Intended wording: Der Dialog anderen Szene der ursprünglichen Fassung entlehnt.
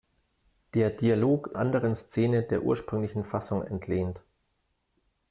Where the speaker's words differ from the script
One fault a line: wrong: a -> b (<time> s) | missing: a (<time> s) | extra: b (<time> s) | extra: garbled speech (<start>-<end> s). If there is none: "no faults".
no faults